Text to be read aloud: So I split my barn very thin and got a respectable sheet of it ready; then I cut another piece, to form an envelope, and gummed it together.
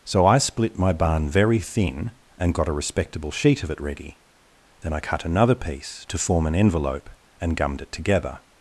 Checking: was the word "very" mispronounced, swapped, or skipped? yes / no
no